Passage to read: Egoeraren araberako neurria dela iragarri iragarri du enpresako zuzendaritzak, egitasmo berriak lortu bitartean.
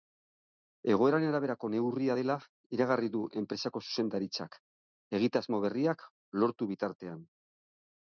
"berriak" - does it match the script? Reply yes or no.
yes